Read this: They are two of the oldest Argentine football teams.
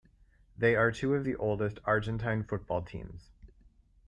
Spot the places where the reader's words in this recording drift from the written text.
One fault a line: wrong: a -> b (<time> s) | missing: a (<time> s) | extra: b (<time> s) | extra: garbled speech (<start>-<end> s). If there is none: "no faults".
no faults